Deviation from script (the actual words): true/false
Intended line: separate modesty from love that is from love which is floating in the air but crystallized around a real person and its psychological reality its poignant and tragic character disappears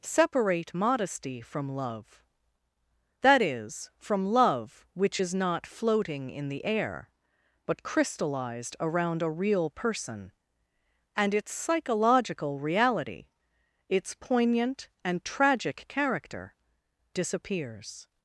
true